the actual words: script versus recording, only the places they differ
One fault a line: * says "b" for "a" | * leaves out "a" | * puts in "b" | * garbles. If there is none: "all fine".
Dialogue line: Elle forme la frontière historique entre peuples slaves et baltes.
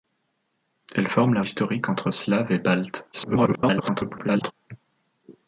* leaves out "frontière"
* leaves out "peuples"
* garbles